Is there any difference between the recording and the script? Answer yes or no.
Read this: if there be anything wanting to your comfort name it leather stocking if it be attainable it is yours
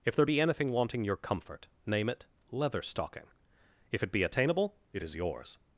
yes